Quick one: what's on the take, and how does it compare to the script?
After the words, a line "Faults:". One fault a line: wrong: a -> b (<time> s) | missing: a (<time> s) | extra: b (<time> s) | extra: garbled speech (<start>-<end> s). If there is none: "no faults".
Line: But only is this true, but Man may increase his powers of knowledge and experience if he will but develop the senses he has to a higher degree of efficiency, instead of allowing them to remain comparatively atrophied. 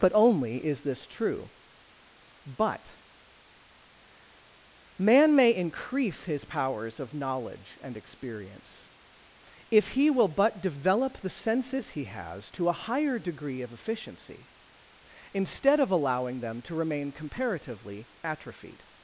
But only is this true, but Man may increase his powers of knowledge and experience if he will but develop the senses he has to a higher degree of efficiency, instead of allowing them to remain comparatively atrophied.
Faults:
no faults